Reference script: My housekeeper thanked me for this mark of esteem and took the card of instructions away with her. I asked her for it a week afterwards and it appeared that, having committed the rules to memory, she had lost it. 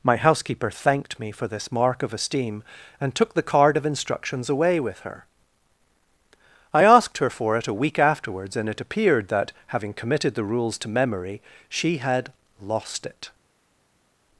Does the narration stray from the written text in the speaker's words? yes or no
no